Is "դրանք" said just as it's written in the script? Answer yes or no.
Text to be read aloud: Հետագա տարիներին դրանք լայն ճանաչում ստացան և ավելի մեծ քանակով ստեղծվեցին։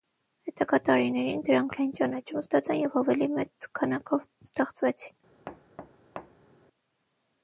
yes